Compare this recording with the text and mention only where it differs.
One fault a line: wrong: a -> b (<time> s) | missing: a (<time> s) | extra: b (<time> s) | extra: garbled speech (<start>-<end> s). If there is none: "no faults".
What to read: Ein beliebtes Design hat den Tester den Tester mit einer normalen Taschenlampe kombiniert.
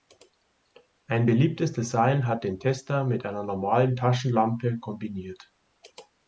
missing: den Tester (3.0 s)